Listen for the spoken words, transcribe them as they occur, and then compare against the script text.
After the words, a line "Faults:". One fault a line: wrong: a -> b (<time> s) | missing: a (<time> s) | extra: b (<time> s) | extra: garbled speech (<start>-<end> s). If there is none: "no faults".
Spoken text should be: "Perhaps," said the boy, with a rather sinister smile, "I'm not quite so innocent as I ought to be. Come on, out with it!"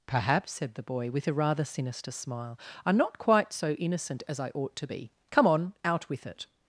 "Perhaps," said the boy, with a rather sinister smile, "I'm not quite so innocent as I ought to be. Come on, out with it!"
Faults:
no faults